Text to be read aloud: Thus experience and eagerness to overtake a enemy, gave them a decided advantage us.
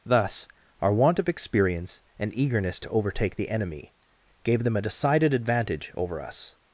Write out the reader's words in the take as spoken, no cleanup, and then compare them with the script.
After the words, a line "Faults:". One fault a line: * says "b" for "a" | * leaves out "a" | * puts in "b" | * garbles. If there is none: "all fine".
Thus our want of experience and eagerness to overtake the enemy, gave them a decided advantage over us.
Faults:
* puts in "our want of"
* says "the" for "a"
* puts in "over"